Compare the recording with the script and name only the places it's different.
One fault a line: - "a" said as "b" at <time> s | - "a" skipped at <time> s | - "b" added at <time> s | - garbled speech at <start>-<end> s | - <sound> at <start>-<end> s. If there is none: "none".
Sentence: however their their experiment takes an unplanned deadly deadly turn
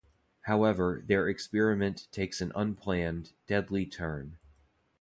- "their" skipped at 1.3 s
- "deadly" skipped at 3.8 s